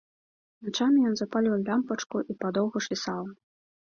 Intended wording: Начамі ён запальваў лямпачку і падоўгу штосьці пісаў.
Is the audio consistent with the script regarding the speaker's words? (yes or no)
no